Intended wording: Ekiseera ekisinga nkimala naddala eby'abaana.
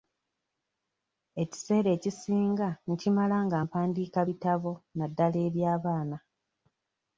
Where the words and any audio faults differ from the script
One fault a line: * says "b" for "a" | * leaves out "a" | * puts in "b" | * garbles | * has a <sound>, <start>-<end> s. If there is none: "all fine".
* puts in "nga mpandiika bitabo"